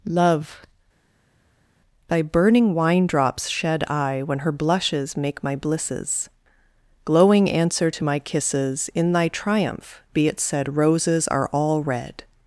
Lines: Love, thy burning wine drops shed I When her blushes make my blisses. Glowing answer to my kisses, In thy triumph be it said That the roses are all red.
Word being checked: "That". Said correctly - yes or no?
no